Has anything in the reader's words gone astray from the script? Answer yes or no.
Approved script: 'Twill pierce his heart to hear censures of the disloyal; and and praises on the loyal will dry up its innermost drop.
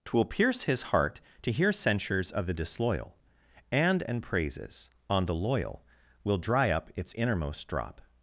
no